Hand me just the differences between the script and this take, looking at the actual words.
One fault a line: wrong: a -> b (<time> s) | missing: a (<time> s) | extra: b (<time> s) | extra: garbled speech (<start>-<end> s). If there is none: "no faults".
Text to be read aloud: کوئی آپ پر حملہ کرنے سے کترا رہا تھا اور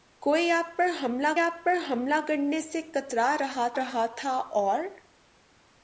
extra: آپ پر حملہ (1.4 s)
extra: رہا (3.8 s)